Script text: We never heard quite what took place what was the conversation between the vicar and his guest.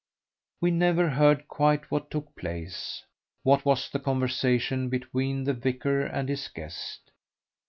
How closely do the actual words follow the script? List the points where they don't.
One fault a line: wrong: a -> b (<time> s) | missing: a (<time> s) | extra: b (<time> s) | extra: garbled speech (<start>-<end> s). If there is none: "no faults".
no faults